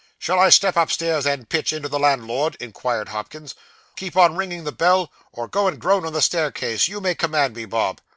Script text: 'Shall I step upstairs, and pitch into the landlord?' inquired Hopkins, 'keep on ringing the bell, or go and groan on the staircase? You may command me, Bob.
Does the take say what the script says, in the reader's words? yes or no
yes